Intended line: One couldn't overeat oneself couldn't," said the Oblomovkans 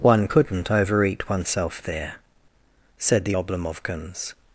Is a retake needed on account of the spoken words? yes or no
yes